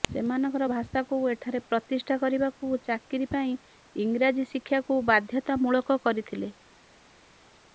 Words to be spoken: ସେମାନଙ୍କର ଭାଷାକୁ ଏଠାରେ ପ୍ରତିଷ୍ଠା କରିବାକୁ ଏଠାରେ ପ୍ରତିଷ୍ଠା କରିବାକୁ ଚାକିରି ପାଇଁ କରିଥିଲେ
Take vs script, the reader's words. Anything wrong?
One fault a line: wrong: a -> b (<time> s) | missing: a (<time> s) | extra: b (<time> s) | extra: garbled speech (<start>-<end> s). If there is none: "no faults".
wrong: ଏଠାରେ ପ୍ରତିଷ୍ଠା କରିବାକୁ ଚାକିରି ପାଇଁ -> ଚାକିରି ପାଇଁ ଇଂରାଜୀ ଶିକ୍ଷାକୁ ବାଧ୍ୟତାମୂଳକ (2.8 s)